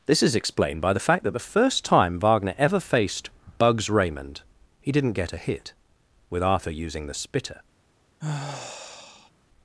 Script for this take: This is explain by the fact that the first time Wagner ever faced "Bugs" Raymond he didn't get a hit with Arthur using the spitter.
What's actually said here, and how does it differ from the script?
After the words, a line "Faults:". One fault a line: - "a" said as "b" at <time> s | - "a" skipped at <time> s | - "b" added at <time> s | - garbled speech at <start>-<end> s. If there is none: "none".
This is explained by the fact that the first time Wagner ever faced "Bugs" Raymond he didn't get a hit with Arthur using the spitter.
Faults:
- "explain" said as "explained" at 0.3 s